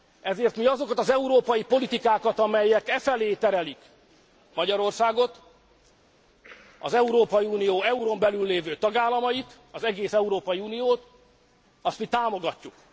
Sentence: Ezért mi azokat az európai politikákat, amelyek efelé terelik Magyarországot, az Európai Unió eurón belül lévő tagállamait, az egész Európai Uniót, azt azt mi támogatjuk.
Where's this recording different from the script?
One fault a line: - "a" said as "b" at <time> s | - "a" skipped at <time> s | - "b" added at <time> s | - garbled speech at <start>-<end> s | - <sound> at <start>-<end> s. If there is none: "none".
- "azt" skipped at 12.0 s